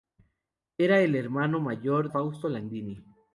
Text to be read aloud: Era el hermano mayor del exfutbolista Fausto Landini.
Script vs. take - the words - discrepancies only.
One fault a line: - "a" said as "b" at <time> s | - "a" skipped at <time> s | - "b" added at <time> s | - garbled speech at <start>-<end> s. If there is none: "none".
- "del exfutbolista" skipped at 2.1 s